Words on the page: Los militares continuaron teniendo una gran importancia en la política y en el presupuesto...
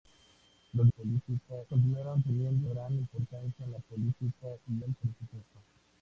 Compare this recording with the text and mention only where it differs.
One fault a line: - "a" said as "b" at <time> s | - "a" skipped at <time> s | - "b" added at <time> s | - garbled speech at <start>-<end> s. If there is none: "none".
- "militares" said as "política" at 0.9 s
- "una" skipped at 2.7 s
- "en" skipped at 4.7 s